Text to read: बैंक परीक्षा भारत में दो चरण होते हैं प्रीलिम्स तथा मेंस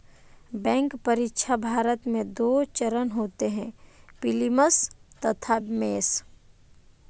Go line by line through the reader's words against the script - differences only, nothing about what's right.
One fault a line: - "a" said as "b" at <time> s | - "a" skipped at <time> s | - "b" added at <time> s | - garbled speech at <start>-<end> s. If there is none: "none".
none